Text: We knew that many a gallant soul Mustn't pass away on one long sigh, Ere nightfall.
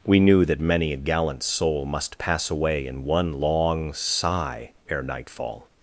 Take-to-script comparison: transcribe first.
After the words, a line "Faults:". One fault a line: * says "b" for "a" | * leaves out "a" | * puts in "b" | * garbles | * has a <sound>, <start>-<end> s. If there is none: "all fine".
We knew that many a gallant soul Must pass away in one long sigh, Ere nightfall.
Faults:
* says "Must" for "Mustn't"
* says "in" for "on"